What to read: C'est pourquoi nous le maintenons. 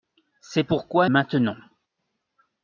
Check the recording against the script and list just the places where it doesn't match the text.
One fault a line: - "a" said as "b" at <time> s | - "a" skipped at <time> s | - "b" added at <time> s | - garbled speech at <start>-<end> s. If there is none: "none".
- "nous le" skipped at 1.1 s